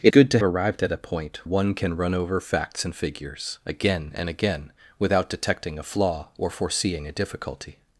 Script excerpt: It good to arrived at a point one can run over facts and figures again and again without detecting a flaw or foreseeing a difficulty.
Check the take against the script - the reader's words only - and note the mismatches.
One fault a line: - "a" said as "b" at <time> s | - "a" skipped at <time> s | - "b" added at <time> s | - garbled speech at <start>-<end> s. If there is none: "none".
none